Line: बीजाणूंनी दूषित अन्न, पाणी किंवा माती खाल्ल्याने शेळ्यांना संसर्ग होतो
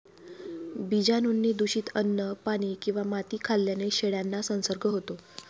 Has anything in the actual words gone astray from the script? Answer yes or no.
no